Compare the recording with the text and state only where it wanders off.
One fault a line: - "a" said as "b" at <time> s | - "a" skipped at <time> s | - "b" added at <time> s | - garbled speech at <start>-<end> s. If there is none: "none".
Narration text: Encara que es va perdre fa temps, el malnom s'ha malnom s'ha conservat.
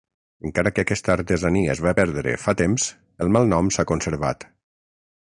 - "aquesta artesania" added at 0.8 s
- "malnom s'ha" skipped at 3.9 s